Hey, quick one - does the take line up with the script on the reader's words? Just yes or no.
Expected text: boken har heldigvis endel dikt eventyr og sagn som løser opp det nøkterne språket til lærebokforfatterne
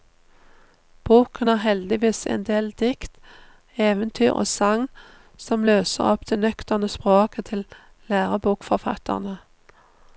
yes